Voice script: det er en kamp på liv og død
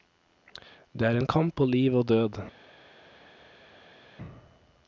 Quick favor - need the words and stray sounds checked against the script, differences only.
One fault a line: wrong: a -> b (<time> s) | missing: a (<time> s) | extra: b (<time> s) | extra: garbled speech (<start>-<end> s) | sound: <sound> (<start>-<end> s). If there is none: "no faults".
no faults